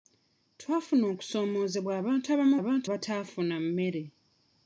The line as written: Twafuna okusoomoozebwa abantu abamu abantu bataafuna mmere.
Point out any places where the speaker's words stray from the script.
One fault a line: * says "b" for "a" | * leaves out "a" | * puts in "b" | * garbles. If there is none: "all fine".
all fine